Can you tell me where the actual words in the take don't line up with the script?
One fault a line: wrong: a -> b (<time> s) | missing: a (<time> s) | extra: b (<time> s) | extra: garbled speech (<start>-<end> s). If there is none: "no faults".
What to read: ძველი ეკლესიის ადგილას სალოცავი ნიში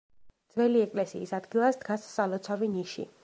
extra: დგას (1.8 s)